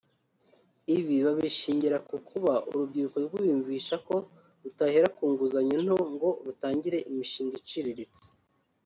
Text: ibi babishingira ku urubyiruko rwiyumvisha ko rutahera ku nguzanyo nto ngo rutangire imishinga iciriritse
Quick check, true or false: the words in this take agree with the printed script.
false